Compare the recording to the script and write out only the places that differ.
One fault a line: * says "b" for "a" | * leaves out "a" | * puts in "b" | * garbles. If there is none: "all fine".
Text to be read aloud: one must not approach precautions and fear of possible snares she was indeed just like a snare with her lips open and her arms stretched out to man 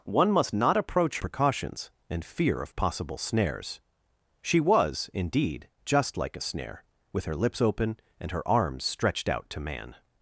all fine